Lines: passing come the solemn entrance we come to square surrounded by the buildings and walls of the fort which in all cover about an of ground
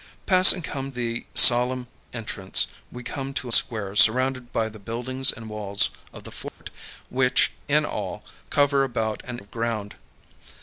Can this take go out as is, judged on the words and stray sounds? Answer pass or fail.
fail